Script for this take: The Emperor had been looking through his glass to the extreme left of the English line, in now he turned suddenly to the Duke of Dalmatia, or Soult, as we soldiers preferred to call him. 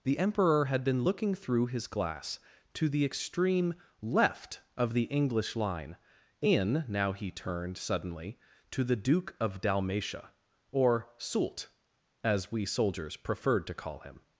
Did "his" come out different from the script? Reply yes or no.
no